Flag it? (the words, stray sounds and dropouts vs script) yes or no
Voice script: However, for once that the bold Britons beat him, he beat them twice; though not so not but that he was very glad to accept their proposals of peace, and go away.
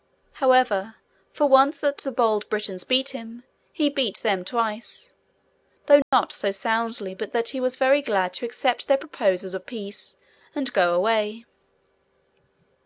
yes